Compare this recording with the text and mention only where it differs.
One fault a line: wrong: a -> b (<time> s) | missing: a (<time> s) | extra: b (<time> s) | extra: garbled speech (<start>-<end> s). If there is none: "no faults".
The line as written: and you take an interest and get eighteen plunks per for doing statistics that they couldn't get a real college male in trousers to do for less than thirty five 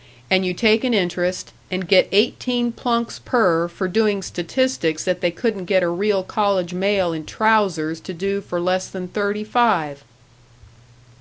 no faults